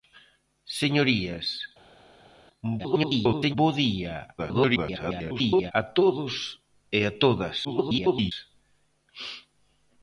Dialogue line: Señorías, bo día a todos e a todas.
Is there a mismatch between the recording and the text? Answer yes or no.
yes